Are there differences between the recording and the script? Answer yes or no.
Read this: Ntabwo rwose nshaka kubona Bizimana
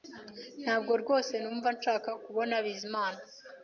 yes